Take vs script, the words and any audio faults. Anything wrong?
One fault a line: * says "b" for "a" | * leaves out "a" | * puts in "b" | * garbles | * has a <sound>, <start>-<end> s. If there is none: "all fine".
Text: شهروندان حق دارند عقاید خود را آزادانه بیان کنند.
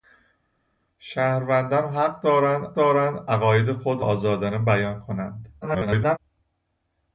* puts in "دارند"
* leaves out "را"
* garbles